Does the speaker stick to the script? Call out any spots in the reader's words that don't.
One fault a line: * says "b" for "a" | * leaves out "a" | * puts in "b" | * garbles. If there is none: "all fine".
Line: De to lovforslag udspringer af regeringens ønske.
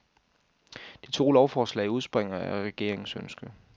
all fine